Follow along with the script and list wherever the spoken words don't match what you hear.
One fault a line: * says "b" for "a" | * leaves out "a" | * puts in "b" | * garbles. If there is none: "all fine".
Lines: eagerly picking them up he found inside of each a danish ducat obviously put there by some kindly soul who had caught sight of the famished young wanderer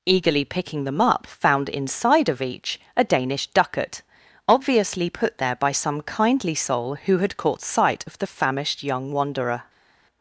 * leaves out "he"